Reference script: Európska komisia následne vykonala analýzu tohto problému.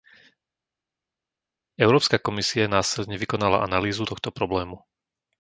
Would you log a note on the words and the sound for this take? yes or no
no